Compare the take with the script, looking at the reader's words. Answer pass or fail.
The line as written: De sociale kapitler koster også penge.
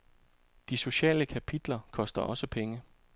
pass